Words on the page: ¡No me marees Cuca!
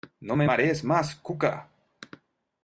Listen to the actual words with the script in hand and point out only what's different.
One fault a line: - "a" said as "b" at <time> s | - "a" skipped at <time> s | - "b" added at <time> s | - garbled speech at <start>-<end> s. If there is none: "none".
- "más" added at 0.8 s